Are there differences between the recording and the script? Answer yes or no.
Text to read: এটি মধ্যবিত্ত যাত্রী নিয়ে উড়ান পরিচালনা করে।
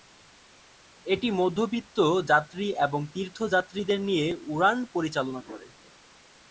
yes